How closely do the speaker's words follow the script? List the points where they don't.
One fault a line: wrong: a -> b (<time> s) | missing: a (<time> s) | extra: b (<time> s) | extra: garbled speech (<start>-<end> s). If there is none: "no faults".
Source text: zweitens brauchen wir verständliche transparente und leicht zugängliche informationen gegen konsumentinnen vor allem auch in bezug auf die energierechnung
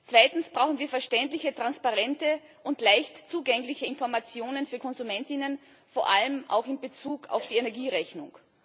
wrong: gegen -> für (4.7 s)